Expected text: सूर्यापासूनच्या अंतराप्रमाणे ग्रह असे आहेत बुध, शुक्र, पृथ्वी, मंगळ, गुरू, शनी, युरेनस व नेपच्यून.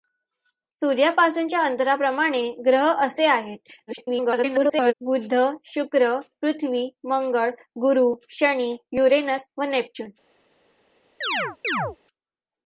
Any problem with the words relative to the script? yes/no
yes